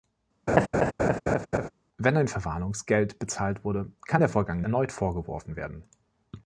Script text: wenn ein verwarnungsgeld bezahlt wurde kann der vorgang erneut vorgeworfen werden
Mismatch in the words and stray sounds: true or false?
true